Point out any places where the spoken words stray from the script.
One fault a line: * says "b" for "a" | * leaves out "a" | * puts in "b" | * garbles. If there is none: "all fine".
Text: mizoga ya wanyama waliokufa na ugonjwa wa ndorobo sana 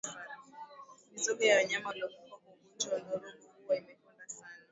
* says "kwa" for "na"
* puts in "huwa imekonda"